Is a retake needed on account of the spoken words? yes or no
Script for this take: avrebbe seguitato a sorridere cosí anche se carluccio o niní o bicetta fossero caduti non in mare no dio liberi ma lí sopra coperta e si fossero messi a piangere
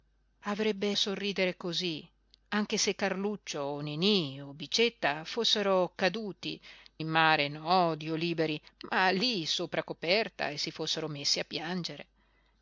yes